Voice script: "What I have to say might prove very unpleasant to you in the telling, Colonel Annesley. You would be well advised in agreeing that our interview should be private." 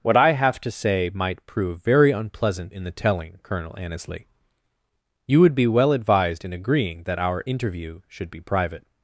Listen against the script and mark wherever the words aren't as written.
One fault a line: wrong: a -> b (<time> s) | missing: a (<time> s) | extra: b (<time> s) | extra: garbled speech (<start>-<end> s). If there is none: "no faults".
missing: to you (2.7 s)